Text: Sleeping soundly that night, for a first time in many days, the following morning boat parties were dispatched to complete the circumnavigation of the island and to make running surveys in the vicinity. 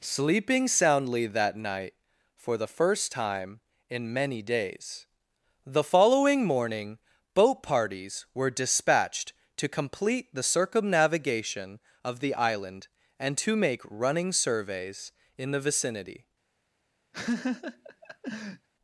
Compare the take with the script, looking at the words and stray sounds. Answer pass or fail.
fail